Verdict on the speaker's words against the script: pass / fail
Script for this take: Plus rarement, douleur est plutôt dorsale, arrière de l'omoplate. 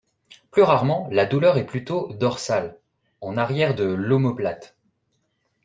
fail